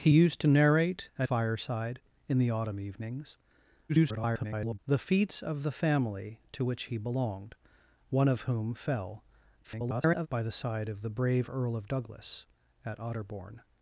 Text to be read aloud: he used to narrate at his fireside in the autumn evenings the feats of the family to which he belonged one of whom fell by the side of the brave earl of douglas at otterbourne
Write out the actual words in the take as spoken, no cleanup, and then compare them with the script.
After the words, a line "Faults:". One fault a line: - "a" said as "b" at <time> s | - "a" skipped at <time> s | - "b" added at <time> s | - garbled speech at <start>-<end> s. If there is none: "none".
he used to narrate at fireside in the autumn evenings [garbled] the feats of the family to which he belonged one of whom fell [garbled] by the side of the brave earl of douglas at otterbourne
Faults:
- "his" skipped at 1.3 s
- garbled speech at 3.9-4.8 s
- garbled speech at 9.6-10.3 s